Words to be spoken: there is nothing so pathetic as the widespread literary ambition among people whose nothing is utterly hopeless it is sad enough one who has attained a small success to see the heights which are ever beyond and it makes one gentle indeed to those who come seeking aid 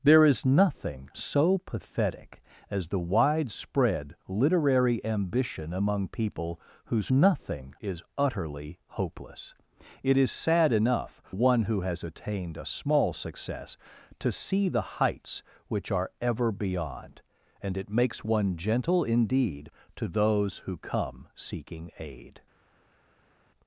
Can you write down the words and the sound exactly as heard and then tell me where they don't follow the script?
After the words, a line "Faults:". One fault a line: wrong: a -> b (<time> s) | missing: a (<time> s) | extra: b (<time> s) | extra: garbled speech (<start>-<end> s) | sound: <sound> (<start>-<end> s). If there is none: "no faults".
there is nothing so pathetic as the widespread literary ambition among people whose nothing is utterly hopeless it is sad enough one who has attained a small success to see the heights which are ever beyond and it makes one gentle indeed to those who come seeking aid
Faults:
no faults